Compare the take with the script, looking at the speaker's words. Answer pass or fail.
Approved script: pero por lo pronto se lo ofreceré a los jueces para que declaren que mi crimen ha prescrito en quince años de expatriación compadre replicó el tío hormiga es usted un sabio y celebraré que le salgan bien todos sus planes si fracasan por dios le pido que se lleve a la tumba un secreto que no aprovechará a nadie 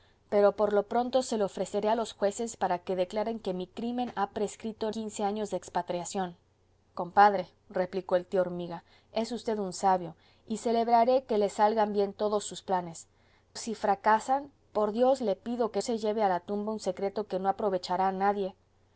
pass